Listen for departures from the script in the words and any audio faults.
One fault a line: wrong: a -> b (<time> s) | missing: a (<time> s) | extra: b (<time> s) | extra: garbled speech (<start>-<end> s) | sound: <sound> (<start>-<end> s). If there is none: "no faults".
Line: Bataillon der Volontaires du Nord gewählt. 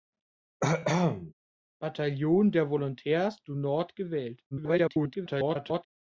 sound: cough (0.6-1.3 s)
extra: garbled speech (4.5-5.9 s)